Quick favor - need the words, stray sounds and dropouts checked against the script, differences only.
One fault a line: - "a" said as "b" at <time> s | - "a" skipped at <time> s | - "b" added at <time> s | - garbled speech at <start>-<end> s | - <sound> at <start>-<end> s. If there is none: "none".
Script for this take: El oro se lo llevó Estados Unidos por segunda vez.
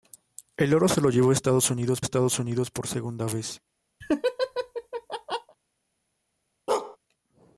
- "Estados Unidos" added at 2.0 s
- laugh at 4.0-5.6 s
- bark at 6.7-7.0 s